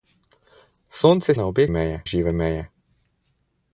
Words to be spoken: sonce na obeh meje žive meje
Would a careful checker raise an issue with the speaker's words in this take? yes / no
no